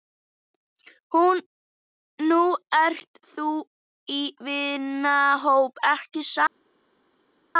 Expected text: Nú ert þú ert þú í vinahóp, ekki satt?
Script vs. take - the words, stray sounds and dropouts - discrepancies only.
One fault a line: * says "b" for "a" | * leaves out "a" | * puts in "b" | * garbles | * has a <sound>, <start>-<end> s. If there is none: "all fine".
* leaves out "ert þú"